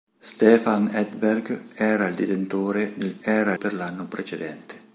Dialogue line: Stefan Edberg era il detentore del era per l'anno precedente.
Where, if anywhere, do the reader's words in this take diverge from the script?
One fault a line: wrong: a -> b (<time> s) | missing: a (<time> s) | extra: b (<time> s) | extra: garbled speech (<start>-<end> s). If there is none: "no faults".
no faults